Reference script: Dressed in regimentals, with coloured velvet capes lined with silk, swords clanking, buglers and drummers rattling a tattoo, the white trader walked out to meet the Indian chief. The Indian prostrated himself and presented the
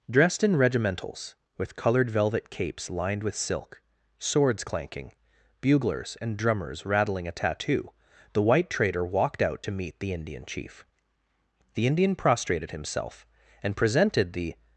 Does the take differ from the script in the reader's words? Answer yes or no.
no